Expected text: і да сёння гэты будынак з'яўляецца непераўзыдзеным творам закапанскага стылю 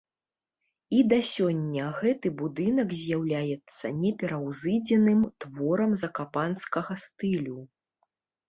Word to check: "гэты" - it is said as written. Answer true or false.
true